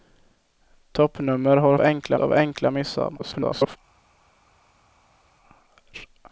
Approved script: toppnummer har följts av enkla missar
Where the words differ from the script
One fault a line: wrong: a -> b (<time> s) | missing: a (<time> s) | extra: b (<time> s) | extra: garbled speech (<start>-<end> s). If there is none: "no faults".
wrong: följts -> enkla (1.8 s)
extra: garbled speech (3.2-3.8 s)